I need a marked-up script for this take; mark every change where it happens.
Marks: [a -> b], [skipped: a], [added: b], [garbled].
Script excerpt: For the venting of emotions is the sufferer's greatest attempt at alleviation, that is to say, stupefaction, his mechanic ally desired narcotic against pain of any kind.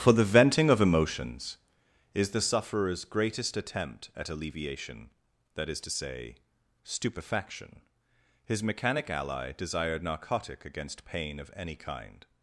For the venting of emotions is the sufferer's greatest attempt at alleviation, that is to say, stupefaction, his mechanic ally desired narcotic against pain of any kind.